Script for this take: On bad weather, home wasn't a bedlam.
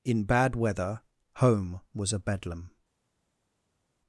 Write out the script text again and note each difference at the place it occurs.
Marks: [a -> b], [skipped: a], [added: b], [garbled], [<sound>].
[On -> In] bad weather, home [wasn't -> was] a bedlam.